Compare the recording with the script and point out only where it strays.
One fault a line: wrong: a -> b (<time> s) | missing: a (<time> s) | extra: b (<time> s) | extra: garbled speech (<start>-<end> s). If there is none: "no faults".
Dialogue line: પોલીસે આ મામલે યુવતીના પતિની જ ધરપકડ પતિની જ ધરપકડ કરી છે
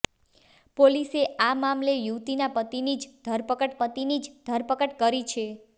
no faults